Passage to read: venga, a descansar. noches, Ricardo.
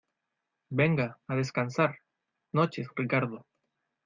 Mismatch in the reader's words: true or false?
false